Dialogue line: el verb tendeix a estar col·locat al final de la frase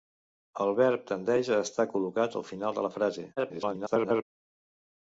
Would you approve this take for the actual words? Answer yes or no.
no